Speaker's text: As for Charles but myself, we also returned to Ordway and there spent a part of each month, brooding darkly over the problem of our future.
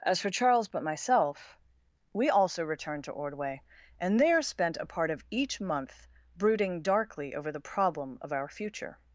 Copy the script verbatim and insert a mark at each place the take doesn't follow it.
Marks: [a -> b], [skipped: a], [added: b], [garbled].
As for Charles but myself, we also returned to Ordway and there spent a part of each month, brooding darkly over the problem of our future.